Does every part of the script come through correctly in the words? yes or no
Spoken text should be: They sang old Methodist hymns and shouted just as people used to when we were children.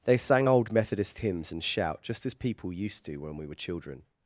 no